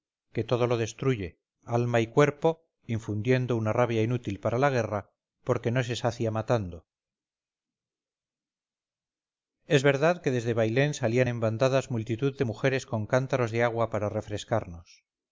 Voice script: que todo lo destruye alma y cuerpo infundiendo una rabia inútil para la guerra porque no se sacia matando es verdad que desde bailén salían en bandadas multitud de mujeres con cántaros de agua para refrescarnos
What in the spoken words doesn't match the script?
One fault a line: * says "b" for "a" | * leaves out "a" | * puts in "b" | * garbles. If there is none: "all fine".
all fine